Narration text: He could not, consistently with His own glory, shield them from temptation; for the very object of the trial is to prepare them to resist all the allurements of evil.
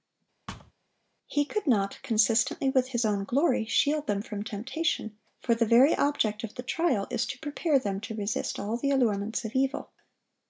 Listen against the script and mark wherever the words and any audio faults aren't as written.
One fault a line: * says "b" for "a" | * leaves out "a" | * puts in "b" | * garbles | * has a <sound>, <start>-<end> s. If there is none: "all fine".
* has a thud, 0.5-0.7 s